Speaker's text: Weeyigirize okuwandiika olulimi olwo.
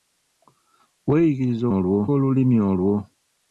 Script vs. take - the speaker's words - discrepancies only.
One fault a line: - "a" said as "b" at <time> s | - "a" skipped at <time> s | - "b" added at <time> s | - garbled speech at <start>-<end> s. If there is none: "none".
- "okuwandiika" said as "olwo" at 1.8 s